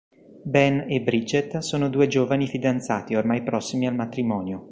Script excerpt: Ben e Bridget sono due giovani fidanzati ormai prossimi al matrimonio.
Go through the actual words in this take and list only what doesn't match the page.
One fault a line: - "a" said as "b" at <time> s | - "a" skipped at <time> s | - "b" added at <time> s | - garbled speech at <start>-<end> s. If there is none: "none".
none